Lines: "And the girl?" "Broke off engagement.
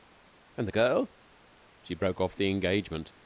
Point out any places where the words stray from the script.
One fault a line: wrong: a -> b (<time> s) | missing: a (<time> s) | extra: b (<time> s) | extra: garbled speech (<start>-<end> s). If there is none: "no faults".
extra: She (1.8 s)
extra: the (2.3 s)